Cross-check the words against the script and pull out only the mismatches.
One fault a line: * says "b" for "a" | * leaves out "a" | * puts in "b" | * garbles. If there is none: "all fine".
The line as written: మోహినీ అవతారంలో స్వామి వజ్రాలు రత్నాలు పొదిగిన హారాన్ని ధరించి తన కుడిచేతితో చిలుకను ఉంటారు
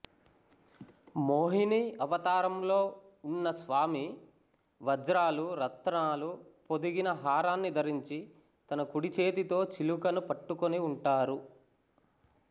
* puts in "ఉన్న"
* puts in "పట్టుకొని"